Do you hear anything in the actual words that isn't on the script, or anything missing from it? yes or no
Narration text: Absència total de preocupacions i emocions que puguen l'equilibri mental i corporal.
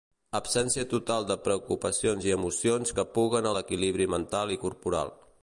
no